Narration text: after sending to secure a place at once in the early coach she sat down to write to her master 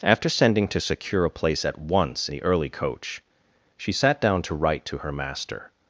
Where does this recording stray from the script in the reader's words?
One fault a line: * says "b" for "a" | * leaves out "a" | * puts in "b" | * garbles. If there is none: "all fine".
* leaves out "in"